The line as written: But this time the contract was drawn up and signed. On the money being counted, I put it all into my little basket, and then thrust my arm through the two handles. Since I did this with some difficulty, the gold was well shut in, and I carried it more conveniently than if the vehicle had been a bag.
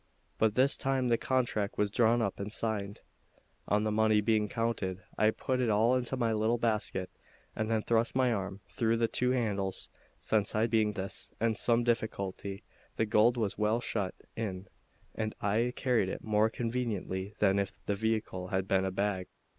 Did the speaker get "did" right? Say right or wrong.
wrong